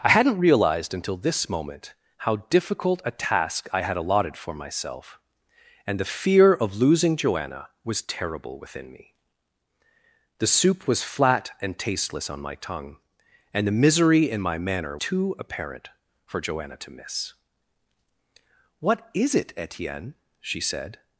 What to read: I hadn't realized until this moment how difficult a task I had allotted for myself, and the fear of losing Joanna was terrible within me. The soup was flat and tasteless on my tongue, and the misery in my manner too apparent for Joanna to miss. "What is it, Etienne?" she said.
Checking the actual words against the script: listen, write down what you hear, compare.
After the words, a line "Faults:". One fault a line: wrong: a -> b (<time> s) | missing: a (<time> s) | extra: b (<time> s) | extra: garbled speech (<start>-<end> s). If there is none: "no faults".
I hadn't realized until this moment how difficult a task I had allotted for myself, and the fear of losing Joanna was terrible within me. The soup was flat and tasteless on my tongue, and the misery in my manner too apparent for Joanna to miss. "What is it, Etienne?" she said.
Faults:
no faults